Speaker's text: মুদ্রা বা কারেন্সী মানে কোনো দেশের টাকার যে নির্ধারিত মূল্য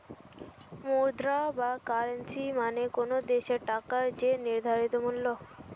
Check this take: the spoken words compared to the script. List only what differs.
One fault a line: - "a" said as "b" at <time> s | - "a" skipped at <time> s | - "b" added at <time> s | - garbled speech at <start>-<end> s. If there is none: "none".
none